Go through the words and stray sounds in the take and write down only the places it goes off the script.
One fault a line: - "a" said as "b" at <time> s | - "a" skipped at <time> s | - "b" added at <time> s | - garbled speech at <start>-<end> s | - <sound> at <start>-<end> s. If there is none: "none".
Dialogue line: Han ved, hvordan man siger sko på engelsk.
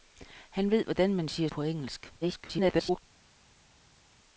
- "sko" skipped at 1.5 s
- garbled speech at 2.2-3.0 s